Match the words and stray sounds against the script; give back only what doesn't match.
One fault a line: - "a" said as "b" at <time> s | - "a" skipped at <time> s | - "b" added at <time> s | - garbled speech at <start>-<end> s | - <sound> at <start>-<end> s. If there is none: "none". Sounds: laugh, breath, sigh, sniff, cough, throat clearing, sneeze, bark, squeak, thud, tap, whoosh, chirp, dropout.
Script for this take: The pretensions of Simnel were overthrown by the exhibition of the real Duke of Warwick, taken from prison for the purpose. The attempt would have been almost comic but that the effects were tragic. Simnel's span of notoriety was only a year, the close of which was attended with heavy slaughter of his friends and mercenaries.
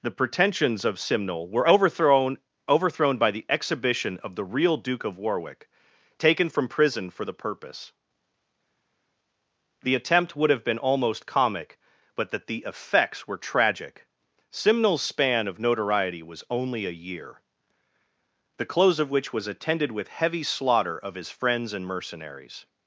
- "overthrown" added at 2.7 s